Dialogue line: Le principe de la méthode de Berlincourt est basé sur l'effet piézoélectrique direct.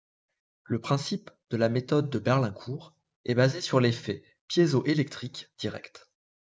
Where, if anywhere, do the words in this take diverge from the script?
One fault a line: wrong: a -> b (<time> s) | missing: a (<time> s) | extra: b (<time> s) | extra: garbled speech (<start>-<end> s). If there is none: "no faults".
no faults